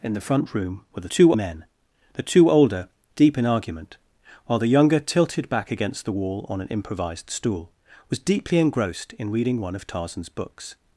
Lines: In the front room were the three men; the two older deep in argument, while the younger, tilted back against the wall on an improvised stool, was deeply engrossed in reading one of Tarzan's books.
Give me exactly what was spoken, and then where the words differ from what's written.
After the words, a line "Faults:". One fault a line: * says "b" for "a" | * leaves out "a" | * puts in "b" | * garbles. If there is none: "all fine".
In the front room were the two men; the two older deep in argument, while the younger, tilted back against the wall on an improvised stool, was deeply engrossed in reading one of Tarzan's books.
Faults:
* says "two" for "three"